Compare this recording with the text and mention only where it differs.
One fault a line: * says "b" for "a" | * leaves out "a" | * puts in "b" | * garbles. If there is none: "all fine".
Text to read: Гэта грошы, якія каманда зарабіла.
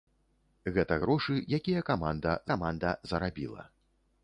* puts in "каманда"